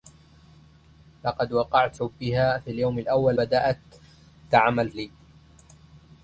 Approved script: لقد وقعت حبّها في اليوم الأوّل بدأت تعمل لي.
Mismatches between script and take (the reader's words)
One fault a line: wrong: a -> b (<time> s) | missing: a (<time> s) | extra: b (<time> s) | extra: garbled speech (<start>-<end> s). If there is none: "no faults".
no faults